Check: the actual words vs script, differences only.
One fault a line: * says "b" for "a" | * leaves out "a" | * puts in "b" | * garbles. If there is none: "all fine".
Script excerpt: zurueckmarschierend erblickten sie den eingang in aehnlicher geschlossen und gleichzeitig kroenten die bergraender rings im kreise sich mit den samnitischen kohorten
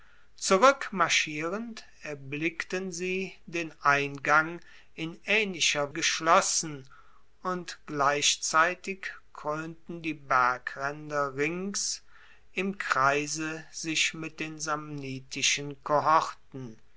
all fine